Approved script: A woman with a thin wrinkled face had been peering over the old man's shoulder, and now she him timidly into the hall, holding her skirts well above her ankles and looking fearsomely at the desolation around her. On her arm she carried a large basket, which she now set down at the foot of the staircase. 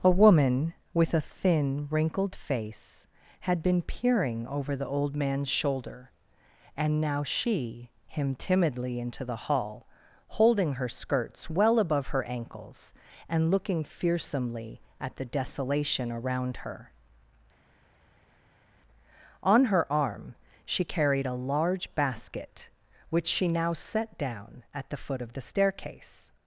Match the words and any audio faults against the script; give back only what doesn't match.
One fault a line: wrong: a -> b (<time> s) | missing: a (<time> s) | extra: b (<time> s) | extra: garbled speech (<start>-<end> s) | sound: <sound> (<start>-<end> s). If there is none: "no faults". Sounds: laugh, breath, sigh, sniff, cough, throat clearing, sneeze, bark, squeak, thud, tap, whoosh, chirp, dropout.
no faults